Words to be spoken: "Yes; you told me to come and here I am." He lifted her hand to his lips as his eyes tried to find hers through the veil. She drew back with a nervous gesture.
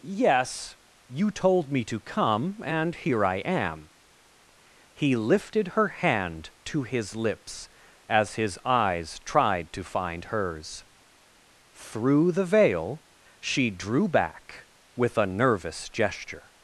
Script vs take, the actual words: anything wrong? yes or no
no